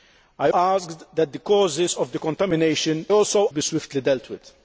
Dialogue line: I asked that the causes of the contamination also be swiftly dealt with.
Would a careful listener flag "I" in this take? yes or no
no